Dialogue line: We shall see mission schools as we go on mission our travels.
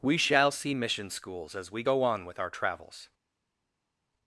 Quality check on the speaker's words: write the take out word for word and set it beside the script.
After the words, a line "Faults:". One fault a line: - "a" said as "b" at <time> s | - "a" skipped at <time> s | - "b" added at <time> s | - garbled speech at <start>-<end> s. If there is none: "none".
We shall see mission schools as we go on with our travels.
Faults:
- "mission" said as "with" at 2.3 s